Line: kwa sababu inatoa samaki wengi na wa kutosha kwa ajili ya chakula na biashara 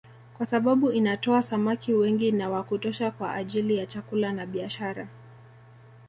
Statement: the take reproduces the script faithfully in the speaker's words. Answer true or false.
true